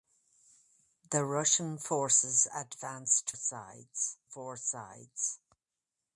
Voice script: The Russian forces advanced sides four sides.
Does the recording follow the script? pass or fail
pass